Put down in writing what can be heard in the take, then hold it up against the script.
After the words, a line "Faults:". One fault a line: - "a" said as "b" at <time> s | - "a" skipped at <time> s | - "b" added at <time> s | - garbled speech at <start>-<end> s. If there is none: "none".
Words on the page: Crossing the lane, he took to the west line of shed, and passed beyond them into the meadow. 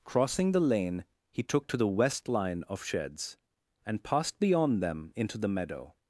Crossing the lane, he took to the west line of sheds, and passed beyond them into the meadow.
Faults:
- "shed" said as "sheds" at 2.8 s